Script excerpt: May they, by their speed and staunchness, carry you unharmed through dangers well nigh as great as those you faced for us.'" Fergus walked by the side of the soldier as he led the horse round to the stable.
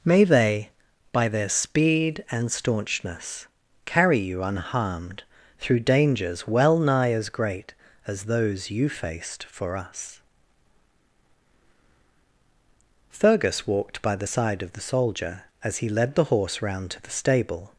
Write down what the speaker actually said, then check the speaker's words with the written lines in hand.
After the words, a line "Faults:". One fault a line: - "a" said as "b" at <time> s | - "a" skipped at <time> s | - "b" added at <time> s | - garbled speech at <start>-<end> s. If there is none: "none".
May they, by their speed and staunchness, carry you unharmed through dangers well nigh as great as those you faced for us.'" Fergus walked by the side of the soldier as he led the horse round to the stable.
Faults:
none